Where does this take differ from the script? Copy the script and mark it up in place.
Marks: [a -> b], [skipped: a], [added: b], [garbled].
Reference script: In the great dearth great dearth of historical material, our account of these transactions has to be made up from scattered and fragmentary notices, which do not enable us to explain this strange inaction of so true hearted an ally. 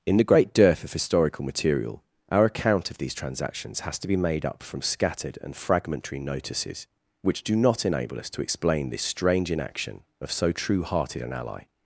In the great dearth [skipped: great dearth] of historical material, our account of these transactions has to be made up from scattered and fragmentary notices, which do not enable us to explain this strange inaction of so true hearted an ally.